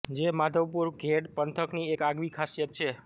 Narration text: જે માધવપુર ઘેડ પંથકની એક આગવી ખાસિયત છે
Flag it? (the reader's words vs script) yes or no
no